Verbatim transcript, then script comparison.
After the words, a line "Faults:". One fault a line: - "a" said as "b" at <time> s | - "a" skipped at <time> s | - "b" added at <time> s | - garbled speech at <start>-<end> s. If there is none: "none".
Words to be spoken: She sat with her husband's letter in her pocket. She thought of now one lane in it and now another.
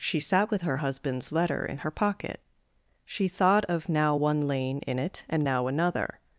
She sat with her husband's letter in her pocket. She thought of now one lane in it and now another.
Faults:
none